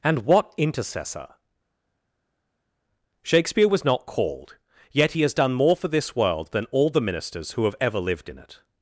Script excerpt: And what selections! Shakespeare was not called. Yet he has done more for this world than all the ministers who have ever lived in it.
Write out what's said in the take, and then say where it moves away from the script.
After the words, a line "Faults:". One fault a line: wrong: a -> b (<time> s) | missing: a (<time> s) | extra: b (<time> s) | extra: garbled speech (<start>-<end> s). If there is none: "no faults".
And what intercessor! Shakespeare was not called. Yet he has done more for this world than all the ministers who have ever lived in it.
Faults:
wrong: selections -> intercessor (0.6 s)